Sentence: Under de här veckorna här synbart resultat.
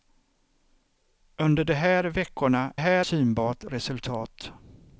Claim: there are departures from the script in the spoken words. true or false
false